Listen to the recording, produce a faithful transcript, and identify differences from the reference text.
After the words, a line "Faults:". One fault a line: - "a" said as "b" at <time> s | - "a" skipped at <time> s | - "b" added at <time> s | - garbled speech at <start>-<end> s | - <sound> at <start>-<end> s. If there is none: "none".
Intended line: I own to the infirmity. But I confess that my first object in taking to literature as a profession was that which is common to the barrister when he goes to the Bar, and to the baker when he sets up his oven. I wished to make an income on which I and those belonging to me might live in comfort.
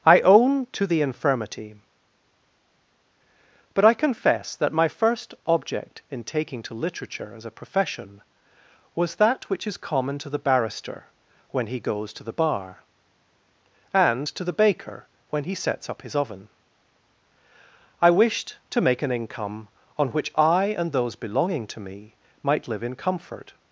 I own to the infirmity. But I confess that my first object in taking to literature as a profession was that which is common to the barrister when he goes to the Bar, and to the baker when he sets up his oven. I wished to make an income on which I and those belonging to me might live in comfort.
Faults:
none